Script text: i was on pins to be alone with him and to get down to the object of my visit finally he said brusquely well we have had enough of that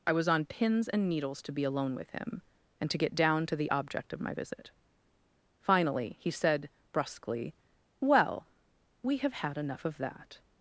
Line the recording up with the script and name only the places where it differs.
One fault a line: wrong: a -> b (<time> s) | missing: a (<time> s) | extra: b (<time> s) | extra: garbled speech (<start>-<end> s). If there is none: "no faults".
extra: and needles (0.9 s)